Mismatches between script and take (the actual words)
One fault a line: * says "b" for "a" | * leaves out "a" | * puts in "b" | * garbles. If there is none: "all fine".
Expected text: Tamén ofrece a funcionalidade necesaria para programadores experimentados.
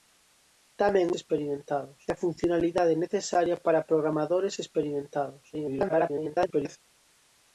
* says "experimentados" for "ofrece"
* garbles